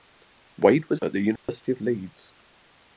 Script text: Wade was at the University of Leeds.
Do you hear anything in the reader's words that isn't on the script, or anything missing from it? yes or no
no